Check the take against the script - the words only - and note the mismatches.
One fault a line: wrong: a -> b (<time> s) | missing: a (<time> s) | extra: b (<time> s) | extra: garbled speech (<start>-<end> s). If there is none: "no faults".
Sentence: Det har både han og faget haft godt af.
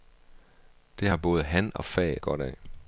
missing: haft (2.2 s)